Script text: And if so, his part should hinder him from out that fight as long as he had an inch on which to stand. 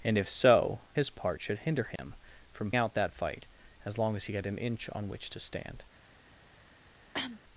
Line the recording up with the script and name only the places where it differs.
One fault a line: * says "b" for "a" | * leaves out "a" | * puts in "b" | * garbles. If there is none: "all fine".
all fine